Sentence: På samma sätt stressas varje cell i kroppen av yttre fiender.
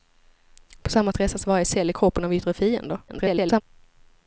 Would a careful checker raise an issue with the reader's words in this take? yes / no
yes